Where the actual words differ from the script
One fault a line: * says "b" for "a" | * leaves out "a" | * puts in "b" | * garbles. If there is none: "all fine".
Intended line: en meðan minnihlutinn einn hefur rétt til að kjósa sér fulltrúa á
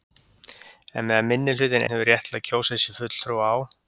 * leaves out "einn"